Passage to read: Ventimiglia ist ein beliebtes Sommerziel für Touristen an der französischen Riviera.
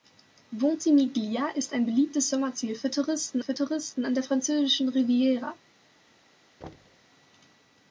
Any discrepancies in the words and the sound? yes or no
yes